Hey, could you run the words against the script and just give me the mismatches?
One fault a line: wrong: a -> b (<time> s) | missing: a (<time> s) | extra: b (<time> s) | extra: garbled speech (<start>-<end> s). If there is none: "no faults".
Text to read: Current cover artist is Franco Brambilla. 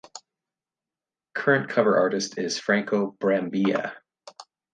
no faults